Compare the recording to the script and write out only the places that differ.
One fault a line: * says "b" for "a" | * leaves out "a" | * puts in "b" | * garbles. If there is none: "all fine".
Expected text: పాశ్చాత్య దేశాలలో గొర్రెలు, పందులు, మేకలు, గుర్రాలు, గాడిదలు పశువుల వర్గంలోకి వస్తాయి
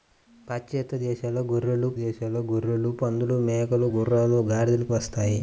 * puts in "దేశాలలో గొర్రెలు"
* leaves out "పశువుల వర్గంలోకి"